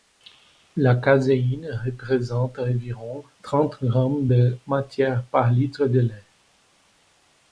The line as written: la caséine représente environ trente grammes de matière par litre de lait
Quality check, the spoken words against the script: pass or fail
pass